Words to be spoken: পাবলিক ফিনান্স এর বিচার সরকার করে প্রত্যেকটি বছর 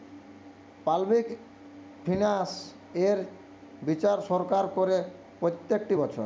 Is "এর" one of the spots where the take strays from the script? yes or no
no